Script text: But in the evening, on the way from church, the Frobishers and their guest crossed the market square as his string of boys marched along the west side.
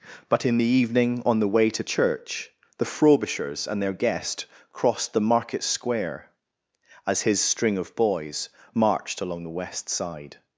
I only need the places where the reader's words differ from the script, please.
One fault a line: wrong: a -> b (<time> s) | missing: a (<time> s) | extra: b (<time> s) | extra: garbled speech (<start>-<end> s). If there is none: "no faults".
wrong: from -> to (1.7 s)